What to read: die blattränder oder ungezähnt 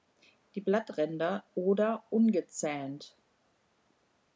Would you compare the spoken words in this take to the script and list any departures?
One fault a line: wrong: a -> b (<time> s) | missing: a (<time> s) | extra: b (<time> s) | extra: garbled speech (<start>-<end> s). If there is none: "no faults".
no faults